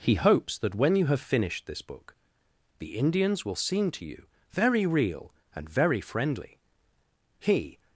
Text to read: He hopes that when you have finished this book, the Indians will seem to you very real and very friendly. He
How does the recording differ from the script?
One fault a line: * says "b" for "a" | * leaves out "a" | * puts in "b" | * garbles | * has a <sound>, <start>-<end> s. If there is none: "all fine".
all fine